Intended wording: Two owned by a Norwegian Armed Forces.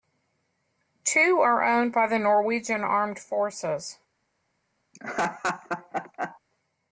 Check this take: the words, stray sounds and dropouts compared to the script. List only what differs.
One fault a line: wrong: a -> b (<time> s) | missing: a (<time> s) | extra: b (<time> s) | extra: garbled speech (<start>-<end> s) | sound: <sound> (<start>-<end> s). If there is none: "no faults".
extra: are (1.4 s)
wrong: a -> the (2.1 s)
sound: laugh (4.9-6.4 s)